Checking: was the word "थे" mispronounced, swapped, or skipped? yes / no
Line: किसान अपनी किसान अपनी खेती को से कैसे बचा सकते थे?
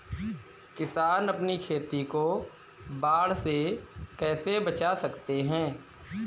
yes